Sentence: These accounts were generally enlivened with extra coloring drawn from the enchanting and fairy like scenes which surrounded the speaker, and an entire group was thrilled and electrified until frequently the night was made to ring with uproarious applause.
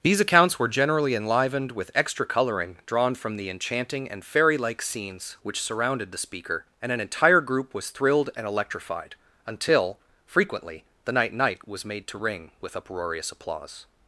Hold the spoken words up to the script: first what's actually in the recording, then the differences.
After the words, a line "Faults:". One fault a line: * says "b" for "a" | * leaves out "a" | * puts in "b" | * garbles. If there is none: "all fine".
These accounts were generally enlivened with extra coloring drawn from the enchanting and fairy like scenes which surrounded the speaker, and an entire group was thrilled and electrified until frequently the night night was made to ring with uproarious applause.
Faults:
* puts in "night"